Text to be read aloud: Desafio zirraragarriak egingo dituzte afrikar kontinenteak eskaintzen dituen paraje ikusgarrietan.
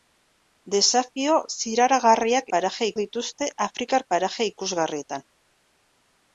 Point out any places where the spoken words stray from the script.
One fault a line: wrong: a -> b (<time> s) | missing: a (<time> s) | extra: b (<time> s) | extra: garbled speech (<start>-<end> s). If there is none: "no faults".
wrong: egingo -> paraje (2.6 s)
missing: kontinenteak eskaintzen dituen (4.1 s)